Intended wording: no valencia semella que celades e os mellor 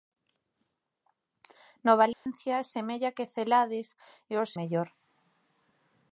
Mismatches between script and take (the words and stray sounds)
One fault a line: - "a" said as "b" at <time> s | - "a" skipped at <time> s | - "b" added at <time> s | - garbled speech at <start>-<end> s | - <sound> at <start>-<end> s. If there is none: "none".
- dropout at 2.1-2.3 s